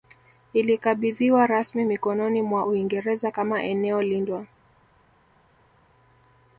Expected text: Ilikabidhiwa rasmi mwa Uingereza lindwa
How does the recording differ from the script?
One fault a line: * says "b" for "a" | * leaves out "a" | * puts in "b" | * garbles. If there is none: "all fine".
* puts in "mikononi"
* puts in "kama eneo"